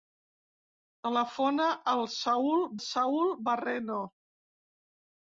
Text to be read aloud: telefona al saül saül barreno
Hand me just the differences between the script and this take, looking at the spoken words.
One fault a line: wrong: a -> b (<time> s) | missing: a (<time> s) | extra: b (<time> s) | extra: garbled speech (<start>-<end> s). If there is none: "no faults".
no faults